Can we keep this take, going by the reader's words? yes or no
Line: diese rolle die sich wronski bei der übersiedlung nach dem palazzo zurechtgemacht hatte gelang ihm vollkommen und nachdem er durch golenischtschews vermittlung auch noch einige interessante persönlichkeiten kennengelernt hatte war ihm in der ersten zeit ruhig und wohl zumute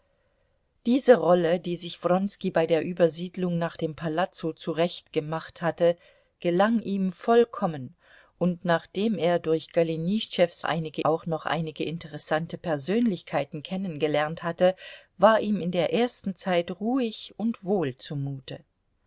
no